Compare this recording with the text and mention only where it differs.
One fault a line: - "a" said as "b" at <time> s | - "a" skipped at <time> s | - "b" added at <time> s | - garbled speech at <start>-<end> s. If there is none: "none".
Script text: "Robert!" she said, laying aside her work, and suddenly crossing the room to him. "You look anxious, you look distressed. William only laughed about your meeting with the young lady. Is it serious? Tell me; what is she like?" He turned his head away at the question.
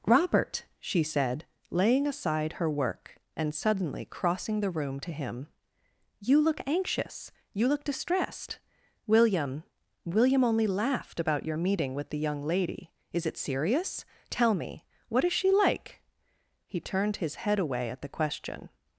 - "William" added at 10.0 s